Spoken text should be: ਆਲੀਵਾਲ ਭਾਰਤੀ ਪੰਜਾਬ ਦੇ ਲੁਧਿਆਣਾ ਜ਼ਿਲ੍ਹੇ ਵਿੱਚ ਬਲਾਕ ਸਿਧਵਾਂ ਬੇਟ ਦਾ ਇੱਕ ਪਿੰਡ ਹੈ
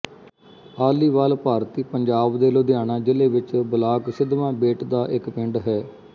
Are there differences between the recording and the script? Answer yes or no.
no